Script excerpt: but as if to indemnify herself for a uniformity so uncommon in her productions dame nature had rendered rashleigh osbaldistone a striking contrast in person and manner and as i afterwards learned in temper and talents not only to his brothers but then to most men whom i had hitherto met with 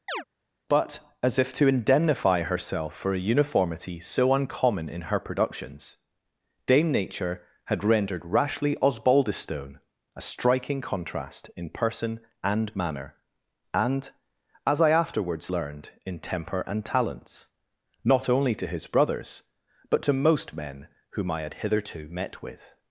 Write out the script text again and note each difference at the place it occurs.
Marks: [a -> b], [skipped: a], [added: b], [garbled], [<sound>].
[chirp] but as if to indemnify herself for a uniformity so uncommon in her productions dame nature had rendered rashleigh osbaldistone a striking contrast in person and manner and as i afterwards learned in temper and talents not only to his brothers but [skipped: then] to most men whom i had hitherto met with